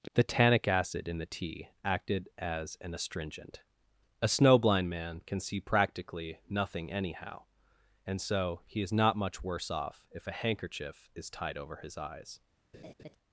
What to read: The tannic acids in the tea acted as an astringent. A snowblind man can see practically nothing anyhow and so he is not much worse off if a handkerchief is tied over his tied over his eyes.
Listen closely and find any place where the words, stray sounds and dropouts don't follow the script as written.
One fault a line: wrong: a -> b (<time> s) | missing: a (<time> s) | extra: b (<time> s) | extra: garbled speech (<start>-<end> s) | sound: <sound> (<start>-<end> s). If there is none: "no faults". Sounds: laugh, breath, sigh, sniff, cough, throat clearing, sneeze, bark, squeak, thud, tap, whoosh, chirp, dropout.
wrong: acids -> acid (0.7 s)
missing: tied over his (12.0 s)
sound: laugh (12.7-13.2 s)